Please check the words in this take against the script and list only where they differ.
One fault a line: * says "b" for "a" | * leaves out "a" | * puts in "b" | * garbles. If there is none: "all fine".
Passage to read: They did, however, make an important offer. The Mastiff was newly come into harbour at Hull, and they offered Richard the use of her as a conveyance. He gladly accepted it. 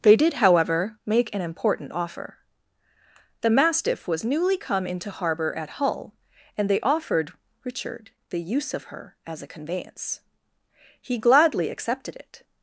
all fine